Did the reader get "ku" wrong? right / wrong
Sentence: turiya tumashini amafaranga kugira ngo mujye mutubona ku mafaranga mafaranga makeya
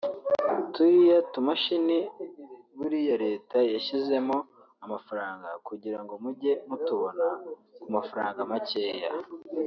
right